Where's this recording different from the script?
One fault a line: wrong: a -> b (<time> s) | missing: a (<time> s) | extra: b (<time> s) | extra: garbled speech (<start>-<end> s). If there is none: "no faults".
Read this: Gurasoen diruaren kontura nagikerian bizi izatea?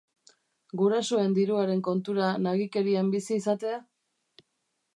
no faults